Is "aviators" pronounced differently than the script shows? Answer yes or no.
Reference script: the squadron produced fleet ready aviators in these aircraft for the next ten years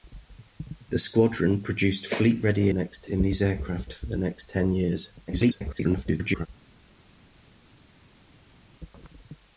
yes